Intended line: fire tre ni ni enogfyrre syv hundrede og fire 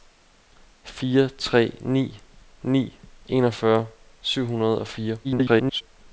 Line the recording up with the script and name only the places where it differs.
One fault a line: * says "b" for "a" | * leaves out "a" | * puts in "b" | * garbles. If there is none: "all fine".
* garbles